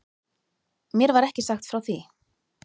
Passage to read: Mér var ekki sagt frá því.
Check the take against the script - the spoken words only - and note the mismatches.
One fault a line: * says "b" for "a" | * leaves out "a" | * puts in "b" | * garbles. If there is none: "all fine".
all fine